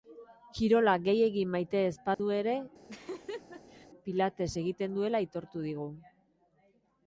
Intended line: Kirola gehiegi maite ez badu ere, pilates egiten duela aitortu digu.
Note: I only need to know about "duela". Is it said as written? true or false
true